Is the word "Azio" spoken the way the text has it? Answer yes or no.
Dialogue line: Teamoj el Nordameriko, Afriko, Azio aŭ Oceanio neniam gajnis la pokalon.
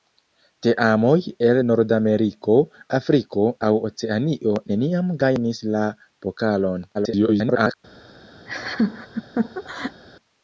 no